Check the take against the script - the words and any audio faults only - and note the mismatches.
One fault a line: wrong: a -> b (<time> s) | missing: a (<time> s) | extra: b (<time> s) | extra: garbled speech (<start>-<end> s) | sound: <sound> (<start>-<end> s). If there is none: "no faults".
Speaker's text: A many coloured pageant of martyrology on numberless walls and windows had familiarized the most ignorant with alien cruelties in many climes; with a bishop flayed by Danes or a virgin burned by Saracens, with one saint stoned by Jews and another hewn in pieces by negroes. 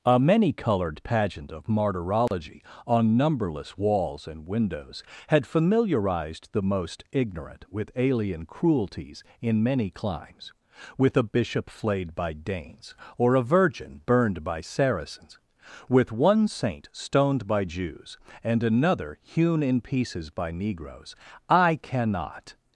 sound: dropout (2.3-2.3 s)
extra: I cannot (21.5 s)